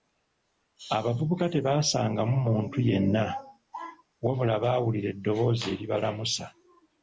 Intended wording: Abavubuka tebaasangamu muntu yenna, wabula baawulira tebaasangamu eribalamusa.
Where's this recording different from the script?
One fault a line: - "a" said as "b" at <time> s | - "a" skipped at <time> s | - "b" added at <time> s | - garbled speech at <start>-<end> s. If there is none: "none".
- "tebaasangamu" said as "eddoboozi" at 5.1 s